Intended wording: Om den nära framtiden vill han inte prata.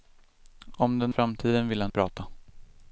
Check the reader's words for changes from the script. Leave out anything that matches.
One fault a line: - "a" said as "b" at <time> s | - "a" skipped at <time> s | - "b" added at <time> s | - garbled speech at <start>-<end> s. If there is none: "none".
- "nära" skipped at 1.1 s
- "inte" skipped at 1.9 s